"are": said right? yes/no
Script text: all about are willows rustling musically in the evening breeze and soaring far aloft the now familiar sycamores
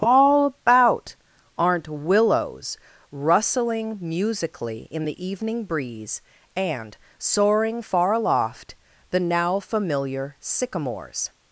no